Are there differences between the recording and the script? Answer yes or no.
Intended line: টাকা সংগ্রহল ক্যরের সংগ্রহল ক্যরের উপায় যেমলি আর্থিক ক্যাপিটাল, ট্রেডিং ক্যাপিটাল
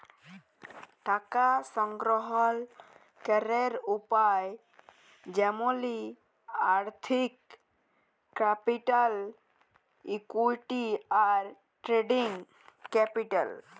yes